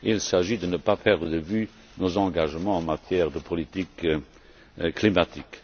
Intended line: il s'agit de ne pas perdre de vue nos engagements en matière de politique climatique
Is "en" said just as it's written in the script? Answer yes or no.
yes